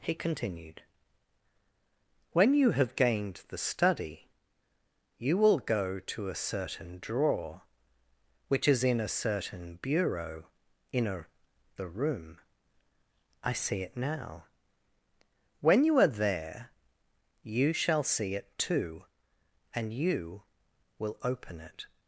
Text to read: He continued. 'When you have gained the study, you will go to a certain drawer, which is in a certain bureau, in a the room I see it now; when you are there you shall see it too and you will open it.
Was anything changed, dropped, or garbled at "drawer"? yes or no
no